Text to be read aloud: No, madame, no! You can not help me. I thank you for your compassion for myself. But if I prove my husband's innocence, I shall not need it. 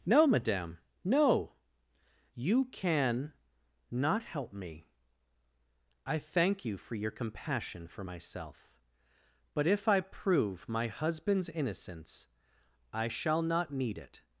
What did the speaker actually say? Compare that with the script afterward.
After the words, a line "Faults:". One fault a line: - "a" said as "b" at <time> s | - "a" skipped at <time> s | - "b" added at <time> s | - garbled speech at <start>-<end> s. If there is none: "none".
No, madame, no! You can not help me. I thank you for your compassion for myself. But if I prove my husband's innocence, I shall not need it.
Faults:
none